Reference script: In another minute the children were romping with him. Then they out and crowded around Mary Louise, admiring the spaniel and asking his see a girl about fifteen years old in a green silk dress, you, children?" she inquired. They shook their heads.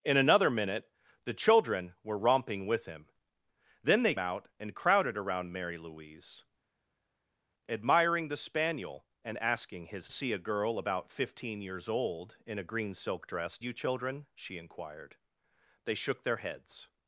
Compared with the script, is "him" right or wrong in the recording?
right